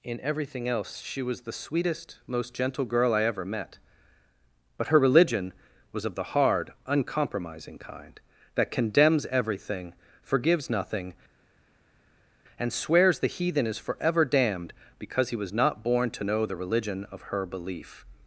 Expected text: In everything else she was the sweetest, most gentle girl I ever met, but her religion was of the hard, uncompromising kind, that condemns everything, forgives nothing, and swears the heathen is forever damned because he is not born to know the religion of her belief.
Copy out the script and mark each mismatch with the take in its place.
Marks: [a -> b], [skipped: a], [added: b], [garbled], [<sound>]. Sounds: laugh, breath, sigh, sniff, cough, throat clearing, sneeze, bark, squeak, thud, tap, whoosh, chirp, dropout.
In everything else she was the sweetest, most gentle girl I ever met, but her religion was of the hard, uncompromising kind, that condemns everything, forgives nothing, and swears the heathen is forever damned because he [is -> was] not born to know the religion of her belief.